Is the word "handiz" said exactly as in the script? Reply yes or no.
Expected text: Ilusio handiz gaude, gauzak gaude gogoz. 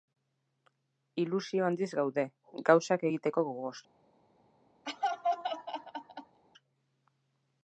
yes